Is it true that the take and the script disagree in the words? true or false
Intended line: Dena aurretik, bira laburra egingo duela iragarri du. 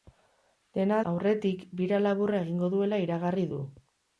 false